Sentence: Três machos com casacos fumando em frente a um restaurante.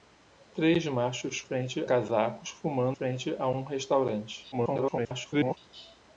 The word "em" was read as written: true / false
false